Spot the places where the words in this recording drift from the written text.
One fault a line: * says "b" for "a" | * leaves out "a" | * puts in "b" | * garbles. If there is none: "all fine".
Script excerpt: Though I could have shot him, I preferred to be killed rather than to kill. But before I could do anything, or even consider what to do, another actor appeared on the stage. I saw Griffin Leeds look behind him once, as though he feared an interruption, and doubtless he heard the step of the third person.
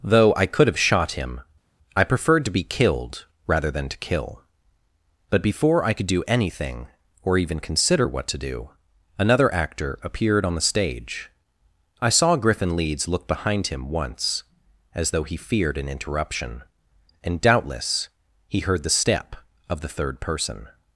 all fine